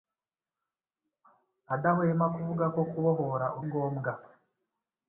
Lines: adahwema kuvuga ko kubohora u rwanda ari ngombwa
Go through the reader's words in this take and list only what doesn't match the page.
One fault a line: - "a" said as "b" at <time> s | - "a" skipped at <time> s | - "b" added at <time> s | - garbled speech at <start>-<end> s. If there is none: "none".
- "rwanda ari" skipped at 3.6 s